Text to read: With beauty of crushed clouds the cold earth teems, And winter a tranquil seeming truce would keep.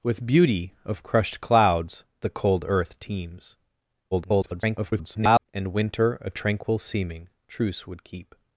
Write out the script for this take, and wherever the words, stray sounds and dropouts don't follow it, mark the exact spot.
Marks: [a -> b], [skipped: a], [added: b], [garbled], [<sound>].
With beauty of crushed clouds the cold earth teems, [garbled] And winter a tranquil seeming truce would keep.